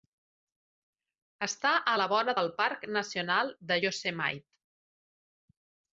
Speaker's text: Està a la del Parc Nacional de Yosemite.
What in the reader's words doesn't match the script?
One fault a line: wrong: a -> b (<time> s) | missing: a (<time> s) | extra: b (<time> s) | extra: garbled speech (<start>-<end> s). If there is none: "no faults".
extra: vora (2.1 s)